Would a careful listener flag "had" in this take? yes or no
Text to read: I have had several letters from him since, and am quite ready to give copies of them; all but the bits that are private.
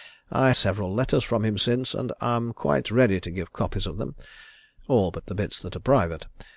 yes